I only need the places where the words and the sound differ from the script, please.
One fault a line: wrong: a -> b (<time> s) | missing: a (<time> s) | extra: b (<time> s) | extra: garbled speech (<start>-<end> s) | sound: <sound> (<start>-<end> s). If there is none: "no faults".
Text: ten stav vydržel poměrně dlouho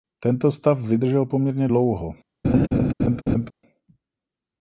wrong: ten -> tento (0.2 s)
sound: laugh (2.4-3.5 s)